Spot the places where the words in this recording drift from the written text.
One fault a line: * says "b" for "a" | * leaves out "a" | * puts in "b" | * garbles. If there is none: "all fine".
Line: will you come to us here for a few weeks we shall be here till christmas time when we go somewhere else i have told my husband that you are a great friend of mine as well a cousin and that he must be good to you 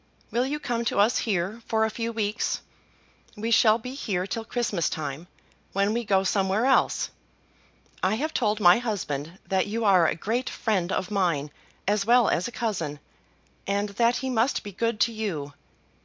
* puts in "as"